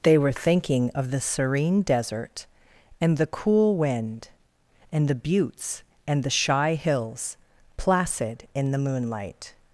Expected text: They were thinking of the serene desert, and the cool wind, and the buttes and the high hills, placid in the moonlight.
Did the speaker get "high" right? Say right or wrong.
wrong